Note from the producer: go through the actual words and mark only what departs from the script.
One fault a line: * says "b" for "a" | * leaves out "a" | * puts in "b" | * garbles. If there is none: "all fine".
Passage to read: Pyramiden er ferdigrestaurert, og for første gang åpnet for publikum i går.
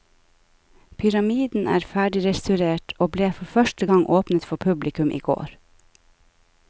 * puts in "ble"